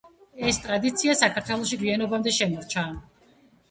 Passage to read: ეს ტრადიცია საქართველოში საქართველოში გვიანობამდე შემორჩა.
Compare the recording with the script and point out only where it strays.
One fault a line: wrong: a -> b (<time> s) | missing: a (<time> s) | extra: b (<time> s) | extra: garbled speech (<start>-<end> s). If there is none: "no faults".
missing: საქართველოში (1.8 s)